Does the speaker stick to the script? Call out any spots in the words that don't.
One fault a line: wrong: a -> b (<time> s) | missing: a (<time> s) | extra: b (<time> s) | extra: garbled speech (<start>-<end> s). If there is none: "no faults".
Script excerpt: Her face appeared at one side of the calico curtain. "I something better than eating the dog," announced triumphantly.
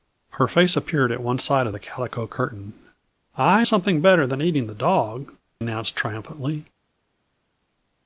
no faults